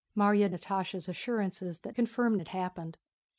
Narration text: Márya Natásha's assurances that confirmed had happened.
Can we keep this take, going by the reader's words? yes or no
yes